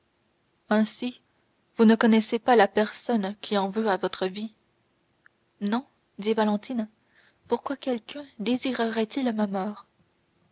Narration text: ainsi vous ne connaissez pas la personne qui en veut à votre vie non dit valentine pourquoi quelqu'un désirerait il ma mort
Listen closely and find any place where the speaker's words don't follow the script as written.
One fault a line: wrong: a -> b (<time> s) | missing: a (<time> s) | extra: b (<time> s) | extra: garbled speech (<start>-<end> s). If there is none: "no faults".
no faults